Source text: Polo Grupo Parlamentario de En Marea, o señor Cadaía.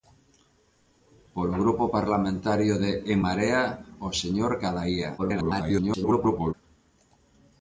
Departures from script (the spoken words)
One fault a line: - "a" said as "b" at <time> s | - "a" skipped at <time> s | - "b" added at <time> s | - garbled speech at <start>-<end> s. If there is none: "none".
- garbled speech at 5.2-6.5 s